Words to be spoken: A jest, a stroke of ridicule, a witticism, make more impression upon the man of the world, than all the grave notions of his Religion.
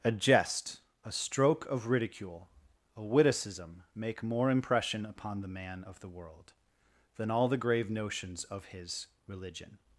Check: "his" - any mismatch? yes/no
no